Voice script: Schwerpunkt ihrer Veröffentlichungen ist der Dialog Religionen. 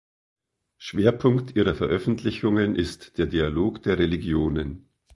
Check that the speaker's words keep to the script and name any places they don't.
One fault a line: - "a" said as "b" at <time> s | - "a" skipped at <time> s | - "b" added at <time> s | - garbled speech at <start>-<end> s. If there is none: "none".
- "der" added at 3.8 s